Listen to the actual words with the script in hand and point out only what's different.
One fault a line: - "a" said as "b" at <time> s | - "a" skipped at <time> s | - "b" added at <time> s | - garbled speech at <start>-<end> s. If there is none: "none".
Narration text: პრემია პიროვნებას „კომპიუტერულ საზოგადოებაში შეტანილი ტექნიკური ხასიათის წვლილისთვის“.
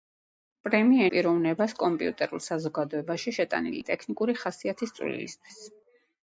none